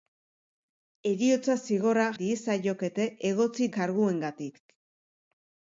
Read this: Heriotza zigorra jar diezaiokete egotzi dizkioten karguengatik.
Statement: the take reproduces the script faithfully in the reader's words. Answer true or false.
false